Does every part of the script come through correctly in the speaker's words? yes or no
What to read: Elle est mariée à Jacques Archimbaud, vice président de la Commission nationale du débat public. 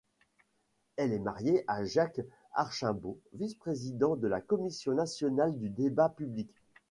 yes